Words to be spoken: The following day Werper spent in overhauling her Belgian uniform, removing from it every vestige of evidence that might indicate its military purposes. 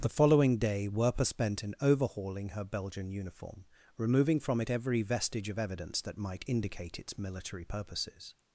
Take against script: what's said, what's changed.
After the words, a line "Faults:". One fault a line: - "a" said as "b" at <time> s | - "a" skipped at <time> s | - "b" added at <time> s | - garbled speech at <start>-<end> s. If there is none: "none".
The following day Werper spent in overhauling her Belgian uniform, removing from it every vestige of evidence that might indicate its military purposes.
Faults:
none